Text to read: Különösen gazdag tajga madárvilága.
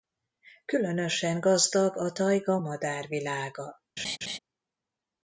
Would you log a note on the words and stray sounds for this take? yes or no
yes